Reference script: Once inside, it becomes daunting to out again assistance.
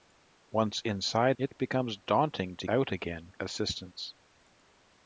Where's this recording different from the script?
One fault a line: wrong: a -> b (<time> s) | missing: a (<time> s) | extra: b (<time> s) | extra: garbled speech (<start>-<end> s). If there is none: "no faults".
no faults